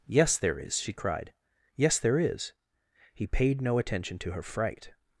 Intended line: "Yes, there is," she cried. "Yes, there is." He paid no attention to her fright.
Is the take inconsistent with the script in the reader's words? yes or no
no